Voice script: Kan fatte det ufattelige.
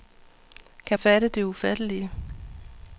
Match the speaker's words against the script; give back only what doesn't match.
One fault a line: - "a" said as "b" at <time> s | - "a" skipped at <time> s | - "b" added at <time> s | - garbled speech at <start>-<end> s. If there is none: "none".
none